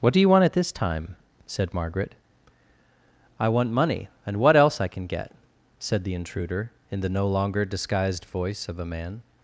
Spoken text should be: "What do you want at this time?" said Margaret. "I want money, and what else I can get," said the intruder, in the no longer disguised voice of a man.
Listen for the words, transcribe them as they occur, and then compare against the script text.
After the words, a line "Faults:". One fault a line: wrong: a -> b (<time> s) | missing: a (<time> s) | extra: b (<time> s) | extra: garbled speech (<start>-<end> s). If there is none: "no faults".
"What do you want at this time?" said Margaret. "I want money, and what else I can get," said the intruder, in the no longer disguised voice of a man.
Faults:
no faults